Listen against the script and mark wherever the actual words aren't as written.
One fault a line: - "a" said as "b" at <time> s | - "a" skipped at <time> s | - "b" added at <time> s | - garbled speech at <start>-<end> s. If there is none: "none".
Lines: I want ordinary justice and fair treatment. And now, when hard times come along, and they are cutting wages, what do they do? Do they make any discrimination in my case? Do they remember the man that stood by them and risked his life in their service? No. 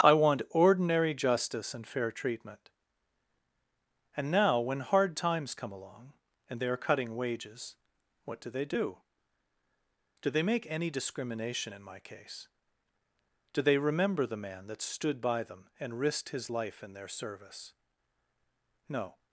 none